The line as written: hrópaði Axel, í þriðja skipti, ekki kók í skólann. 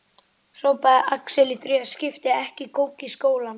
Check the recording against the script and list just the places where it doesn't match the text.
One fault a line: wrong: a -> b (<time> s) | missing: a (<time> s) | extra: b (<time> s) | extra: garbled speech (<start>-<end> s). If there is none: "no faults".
no faults